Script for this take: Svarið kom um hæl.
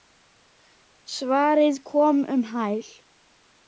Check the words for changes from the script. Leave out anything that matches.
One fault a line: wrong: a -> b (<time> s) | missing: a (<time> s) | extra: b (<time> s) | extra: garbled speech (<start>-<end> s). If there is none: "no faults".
no faults